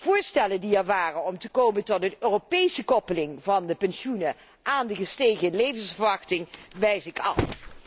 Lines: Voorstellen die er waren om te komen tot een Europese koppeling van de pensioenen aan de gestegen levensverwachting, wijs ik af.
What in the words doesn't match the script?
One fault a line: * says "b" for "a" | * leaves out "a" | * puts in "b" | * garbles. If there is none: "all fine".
all fine